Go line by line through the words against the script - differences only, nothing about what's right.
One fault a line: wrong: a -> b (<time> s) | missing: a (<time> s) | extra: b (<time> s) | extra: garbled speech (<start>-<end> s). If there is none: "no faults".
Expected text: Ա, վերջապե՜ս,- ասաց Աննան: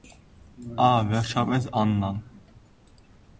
missing: ասաց (1.7 s)